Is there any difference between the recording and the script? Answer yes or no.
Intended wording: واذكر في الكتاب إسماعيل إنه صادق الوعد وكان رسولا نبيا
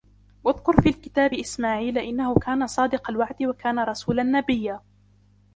yes